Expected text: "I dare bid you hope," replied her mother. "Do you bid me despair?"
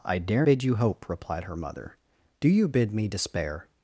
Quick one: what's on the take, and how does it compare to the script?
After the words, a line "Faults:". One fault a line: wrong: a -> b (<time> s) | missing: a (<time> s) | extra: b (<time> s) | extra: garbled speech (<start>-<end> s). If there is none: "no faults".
"I dare bid you hope," replied her mother. "Do you bid me despair?"
Faults:
no faults